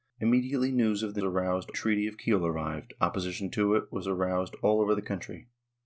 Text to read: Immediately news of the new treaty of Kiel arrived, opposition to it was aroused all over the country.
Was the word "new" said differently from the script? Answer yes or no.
yes